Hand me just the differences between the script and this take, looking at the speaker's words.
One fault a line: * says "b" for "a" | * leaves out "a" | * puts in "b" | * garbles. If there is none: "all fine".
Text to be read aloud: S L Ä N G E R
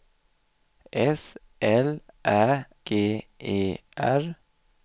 * leaves out "N"